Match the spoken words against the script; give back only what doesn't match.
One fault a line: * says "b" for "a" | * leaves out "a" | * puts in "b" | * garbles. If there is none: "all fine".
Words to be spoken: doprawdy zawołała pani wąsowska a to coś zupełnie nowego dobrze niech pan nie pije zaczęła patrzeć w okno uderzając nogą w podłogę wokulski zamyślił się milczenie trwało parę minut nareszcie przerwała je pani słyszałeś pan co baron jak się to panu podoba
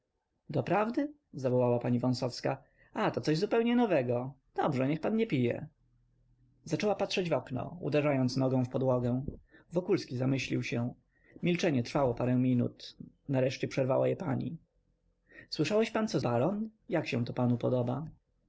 all fine